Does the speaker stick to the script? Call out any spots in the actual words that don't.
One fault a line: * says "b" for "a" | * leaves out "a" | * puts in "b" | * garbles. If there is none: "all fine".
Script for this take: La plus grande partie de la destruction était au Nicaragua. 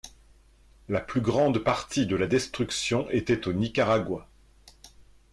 all fine